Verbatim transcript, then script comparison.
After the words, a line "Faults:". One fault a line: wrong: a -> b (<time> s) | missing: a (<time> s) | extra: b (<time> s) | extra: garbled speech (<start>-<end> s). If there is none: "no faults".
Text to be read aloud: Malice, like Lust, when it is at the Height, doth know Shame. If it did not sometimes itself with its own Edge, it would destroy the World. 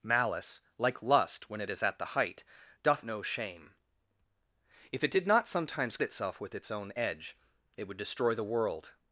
Malice, like Lust, when it is at the Height, doth know Shame. If it did not sometimes itself with its own Edge, it would destroy the World.
Faults:
no faults